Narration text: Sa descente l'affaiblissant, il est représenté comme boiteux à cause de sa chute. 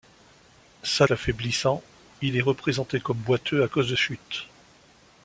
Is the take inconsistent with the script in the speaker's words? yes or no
yes